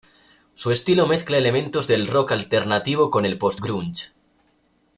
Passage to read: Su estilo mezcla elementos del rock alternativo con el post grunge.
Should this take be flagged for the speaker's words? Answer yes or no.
no